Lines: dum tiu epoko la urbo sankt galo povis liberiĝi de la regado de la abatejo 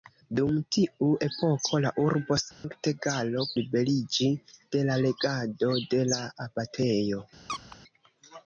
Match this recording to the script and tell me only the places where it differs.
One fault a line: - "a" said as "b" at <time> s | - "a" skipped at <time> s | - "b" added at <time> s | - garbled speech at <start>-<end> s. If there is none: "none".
- "povis" skipped at 3.5 s